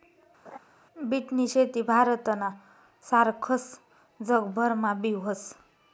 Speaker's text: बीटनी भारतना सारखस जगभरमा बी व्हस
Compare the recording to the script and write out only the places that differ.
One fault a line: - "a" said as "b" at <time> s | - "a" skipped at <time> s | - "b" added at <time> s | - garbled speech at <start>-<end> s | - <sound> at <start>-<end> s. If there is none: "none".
- laugh at 0.4-0.6 s
- "शेती" added at 1.5 s